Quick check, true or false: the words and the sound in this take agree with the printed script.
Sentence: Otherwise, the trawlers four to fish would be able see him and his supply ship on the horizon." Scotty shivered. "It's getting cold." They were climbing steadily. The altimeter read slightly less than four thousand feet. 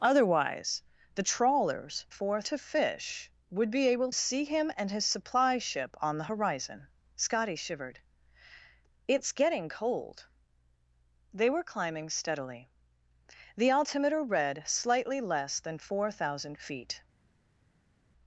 true